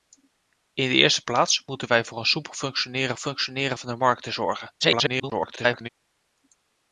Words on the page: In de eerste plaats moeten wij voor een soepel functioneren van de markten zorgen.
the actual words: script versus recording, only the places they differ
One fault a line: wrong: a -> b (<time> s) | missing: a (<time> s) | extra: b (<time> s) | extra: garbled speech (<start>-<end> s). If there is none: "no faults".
extra: functioneren (3.2 s)
extra: garbled speech (4.8-5.9 s)